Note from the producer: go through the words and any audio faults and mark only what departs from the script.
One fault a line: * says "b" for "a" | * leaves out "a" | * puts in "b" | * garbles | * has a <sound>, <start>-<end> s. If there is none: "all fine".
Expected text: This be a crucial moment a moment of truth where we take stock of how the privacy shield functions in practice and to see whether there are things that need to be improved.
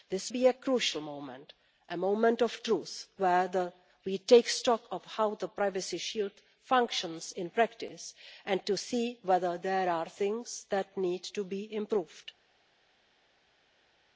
all fine